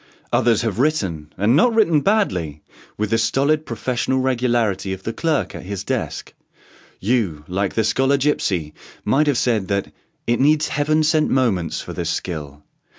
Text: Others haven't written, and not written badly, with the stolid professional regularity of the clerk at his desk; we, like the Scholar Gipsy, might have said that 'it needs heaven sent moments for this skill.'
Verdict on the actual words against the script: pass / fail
fail